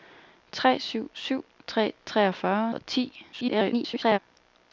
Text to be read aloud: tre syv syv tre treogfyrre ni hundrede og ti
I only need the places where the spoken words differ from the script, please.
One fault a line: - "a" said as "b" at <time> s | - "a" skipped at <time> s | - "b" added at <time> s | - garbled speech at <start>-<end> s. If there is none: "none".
- "ni hundrede" skipped at 2.7 s
- garbled speech at 3.3-4.2 s